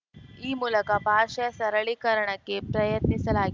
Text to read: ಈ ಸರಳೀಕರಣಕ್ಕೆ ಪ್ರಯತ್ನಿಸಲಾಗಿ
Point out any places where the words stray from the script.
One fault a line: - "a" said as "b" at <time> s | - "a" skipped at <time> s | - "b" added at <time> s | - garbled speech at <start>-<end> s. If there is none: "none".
- "ಮೂಲಕ ಭಾಷೆಯ" added at 0.5 s